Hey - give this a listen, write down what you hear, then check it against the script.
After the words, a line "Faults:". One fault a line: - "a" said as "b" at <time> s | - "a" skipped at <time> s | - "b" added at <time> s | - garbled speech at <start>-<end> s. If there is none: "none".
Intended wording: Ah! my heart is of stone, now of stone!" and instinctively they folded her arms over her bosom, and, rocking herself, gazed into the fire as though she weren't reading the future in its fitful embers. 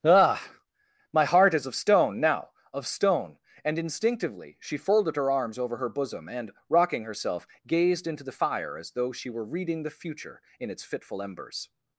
Ah! my heart is of stone, now of stone!" and instinctively she folded her arms over her bosom, and, rocking herself, gazed into the fire as though she were reading the future in its fitful embers.
Faults:
- "they" said as "she" at 4.6 s
- "weren't" said as "were" at 9.3 s